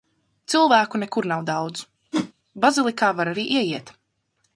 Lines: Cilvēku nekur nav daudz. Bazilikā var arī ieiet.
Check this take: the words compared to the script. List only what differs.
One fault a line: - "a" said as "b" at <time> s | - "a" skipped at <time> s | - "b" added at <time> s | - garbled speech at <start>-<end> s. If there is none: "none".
none